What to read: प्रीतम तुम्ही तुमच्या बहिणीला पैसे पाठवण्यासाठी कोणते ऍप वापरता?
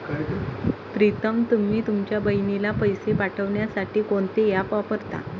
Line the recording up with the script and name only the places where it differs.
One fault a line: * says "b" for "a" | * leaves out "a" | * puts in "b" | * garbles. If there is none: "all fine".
all fine